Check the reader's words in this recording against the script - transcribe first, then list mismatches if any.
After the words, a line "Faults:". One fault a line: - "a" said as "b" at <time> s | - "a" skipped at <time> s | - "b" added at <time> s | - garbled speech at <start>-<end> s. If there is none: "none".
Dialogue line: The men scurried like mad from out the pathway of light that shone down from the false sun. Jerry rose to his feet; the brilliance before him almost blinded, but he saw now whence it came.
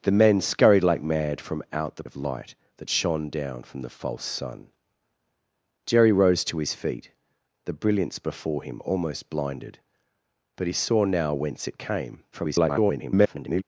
The men scurried like mad from out the of light that shone down from the false sun. Jerry rose to his feet; the brilliance before him almost blinded, but he saw now whence it came. [garbled]
Faults:
- "pathway" skipped at 2.0 s
- garbled speech at 12.3-13.6 s